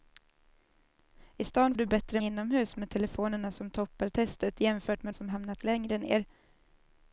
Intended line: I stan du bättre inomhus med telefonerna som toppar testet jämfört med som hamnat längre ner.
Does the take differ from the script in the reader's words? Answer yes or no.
no